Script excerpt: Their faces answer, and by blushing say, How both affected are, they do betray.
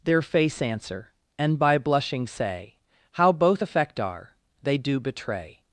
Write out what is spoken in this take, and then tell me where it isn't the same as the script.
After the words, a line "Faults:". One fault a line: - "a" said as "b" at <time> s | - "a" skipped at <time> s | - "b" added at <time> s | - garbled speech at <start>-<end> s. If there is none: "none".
Their face answer, and by blushing say, How both affect are, they do betray.
Faults:
- "faces" said as "face" at 0.2 s
- "affected" said as "affect" at 3.6 s